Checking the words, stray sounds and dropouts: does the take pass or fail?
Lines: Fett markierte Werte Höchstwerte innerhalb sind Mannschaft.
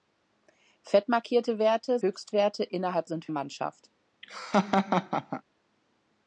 fail